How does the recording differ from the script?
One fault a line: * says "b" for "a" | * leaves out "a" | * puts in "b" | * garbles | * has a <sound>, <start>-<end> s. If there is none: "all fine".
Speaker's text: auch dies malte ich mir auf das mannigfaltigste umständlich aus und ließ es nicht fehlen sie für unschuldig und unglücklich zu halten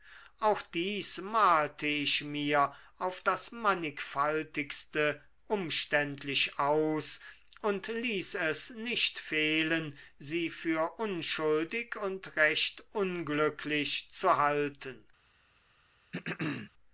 * puts in "recht"
* has a throat clearing, 16.1-16.7 s